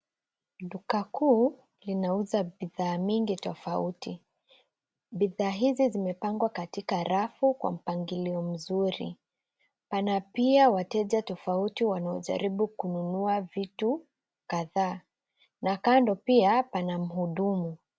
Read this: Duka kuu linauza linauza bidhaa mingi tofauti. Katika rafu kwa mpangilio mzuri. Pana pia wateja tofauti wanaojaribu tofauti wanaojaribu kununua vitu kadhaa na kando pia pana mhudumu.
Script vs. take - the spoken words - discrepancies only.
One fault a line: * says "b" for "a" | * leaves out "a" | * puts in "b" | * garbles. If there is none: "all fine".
* leaves out "linauza"
* puts in "Bidhaa hizi zimepangwa"
* leaves out "tofauti wanaojaribu"